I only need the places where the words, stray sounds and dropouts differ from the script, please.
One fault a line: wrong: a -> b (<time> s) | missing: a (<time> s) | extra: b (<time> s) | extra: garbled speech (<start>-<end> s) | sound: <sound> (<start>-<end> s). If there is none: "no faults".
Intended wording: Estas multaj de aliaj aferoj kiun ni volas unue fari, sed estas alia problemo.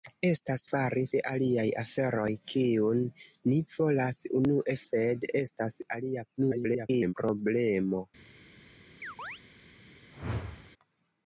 wrong: multaj -> fari (0.7 s)
missing: fari (4.8 s)
extra: garbled speech (6.4-7.1 s)
sound: chirp (9.0-9.4 s)
sound: whoosh (10.1-10.7 s)